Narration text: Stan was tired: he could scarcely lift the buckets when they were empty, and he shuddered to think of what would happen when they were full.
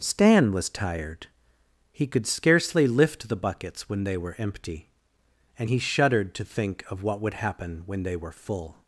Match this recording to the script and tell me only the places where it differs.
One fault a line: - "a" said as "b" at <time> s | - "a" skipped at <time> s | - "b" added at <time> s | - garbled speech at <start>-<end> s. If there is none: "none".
none